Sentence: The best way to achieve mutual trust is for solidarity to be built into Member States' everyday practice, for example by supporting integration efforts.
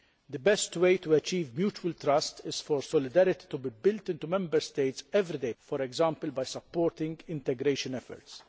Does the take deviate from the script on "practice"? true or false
true